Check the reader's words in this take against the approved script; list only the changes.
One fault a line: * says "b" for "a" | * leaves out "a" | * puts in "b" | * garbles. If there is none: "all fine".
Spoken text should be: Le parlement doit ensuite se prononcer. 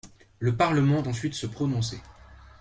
* leaves out "doit"